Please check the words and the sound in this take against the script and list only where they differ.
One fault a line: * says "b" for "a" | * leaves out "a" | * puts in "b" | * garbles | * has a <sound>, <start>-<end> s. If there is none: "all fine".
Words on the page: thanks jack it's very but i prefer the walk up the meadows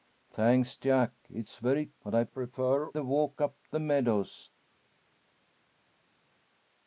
all fine